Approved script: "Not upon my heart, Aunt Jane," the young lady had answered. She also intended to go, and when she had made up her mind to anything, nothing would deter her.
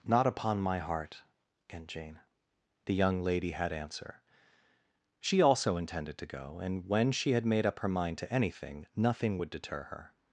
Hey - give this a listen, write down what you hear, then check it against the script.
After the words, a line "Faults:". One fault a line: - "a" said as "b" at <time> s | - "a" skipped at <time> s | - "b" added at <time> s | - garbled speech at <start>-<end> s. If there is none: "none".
"Not upon my heart, Aunt Jane," the young lady had answer. She also intended to go, and when she had made up her mind to anything, nothing would deter her.
Faults:
- "answered" said as "answer" at 3.7 s